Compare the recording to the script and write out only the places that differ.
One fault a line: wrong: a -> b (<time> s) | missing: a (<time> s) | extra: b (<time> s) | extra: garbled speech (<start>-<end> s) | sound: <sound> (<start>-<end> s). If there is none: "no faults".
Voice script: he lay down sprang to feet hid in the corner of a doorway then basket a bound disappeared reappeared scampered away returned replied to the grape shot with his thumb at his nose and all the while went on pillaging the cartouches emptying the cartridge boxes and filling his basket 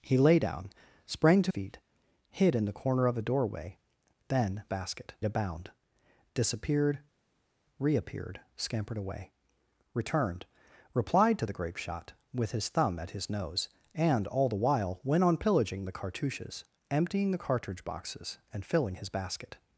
no faults